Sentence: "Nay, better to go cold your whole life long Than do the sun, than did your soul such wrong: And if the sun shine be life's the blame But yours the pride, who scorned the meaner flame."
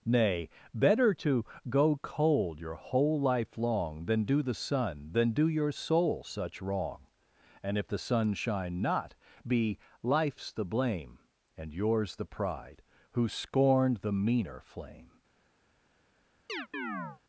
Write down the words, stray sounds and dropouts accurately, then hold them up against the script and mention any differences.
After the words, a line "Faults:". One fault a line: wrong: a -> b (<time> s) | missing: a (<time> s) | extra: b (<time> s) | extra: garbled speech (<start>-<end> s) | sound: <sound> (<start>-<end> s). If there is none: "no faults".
"Nay, better to go cold your whole life long Than do the sun, than do your soul such wrong: And if the sun shine not, be life's the blame And yours the pride, who scorned the meaner flame."
Faults:
wrong: did -> do (5.3 s)
extra: not (8.8 s)
wrong: But -> And (11.6 s)
sound: chirp (16.5-17.2 s)